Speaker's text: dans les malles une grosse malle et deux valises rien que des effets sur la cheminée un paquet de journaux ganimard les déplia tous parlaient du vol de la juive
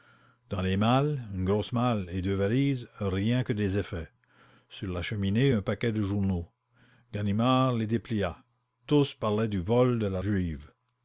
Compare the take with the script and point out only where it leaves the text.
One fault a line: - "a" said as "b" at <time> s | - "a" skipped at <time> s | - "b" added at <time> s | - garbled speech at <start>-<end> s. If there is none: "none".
none